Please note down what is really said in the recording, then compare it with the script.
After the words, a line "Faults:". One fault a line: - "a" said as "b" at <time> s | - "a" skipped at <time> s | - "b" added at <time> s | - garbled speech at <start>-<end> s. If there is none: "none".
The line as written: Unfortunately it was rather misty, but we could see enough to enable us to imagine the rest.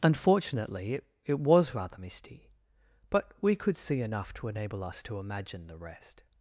Unfortunately it it was rather misty, but we could see enough to enable us to imagine the rest.
Faults:
- "it" added at 1.2 s